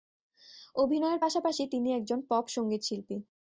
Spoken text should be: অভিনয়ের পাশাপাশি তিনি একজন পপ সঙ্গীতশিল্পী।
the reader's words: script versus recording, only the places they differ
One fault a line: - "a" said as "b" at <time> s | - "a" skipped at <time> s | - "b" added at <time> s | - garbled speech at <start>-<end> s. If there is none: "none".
none